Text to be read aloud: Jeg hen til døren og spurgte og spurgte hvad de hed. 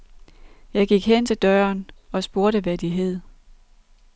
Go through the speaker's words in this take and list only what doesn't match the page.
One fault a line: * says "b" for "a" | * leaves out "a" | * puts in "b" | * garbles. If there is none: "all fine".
* puts in "gik"
* leaves out "og spurgte"